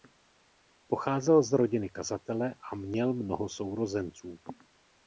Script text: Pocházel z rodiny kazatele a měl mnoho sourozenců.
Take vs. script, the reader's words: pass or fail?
pass